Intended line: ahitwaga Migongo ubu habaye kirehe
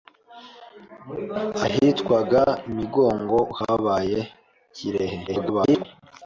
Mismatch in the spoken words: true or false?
true